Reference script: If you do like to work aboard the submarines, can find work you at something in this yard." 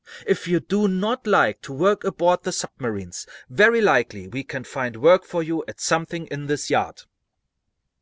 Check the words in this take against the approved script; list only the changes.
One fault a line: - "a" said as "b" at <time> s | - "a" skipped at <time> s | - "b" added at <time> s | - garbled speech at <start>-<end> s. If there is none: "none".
- "not" added at 0.9 s
- "very likely we" added at 3.5 s
- "for" added at 5.2 s